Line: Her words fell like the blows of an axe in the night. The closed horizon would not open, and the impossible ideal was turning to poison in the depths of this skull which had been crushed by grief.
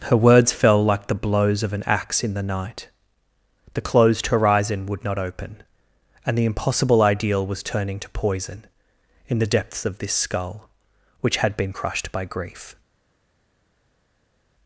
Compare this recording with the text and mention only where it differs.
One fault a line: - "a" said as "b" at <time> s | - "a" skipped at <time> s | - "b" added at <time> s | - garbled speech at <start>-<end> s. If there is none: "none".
none